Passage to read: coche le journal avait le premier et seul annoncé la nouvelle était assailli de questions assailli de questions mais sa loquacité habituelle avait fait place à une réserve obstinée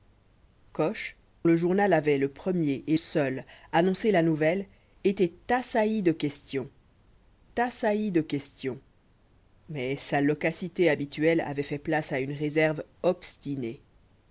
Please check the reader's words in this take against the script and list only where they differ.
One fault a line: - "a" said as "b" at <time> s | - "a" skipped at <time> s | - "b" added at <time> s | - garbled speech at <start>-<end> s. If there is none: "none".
none